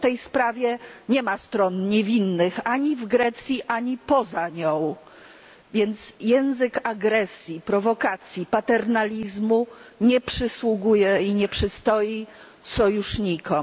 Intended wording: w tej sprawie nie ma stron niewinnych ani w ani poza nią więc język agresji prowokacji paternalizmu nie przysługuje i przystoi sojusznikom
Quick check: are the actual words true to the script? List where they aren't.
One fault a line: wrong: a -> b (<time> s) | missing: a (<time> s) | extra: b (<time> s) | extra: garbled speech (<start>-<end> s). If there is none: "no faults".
extra: grecji (3.1 s)
extra: nie (11.3 s)